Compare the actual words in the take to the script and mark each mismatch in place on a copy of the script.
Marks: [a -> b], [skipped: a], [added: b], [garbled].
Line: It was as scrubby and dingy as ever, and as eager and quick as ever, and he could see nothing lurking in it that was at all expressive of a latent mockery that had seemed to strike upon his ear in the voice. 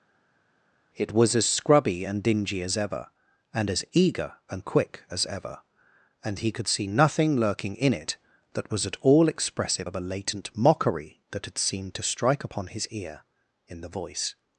It was as scrubby and dingy as ever, and as eager and quick as ever, and he could see nothing lurking in it that was at all expressive of a latent mockery that had seemed to strike upon his ear in the voice.